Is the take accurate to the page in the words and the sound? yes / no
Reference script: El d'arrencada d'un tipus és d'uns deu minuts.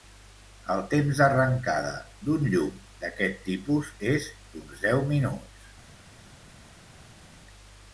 no